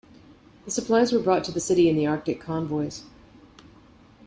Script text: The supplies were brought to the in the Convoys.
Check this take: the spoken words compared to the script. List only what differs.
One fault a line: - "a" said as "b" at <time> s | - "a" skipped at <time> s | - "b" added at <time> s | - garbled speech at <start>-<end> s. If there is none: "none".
- "city" added at 1.6 s
- "Arctic" added at 2.1 s